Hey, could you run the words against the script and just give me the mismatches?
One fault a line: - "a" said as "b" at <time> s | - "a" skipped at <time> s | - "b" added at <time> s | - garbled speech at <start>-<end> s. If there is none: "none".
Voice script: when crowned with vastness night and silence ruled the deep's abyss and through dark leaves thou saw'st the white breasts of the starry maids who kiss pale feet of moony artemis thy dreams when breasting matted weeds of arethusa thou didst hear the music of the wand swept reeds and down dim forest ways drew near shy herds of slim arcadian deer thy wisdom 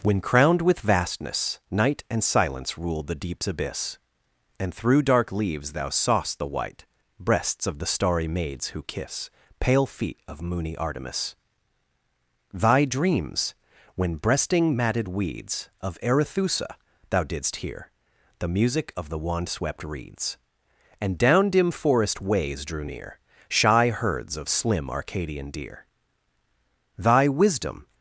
none